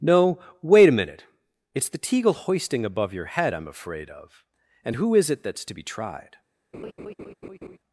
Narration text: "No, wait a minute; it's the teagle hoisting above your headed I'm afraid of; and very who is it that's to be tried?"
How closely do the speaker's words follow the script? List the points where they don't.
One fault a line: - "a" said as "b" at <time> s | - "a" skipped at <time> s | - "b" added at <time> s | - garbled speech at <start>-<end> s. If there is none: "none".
- "headed" said as "head" at 3.2 s
- "very" skipped at 4.9 s